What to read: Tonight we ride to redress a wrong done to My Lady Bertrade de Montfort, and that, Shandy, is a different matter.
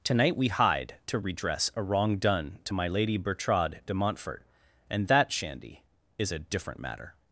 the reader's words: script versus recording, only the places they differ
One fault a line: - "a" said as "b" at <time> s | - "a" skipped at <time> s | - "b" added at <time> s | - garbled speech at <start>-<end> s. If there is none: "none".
- "ride" said as "hide" at 0.5 s